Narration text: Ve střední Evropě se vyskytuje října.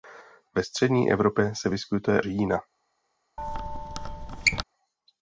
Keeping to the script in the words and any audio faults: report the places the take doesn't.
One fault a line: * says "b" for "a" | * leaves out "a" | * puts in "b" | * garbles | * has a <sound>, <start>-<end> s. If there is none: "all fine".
* has a squeak, 3.4-4.6 s